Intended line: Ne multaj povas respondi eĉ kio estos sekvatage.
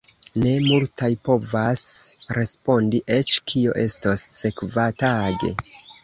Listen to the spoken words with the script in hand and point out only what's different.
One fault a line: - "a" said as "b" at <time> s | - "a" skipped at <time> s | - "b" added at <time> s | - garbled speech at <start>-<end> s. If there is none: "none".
none